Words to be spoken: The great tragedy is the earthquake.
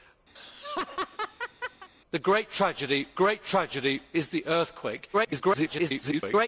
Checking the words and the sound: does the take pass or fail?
fail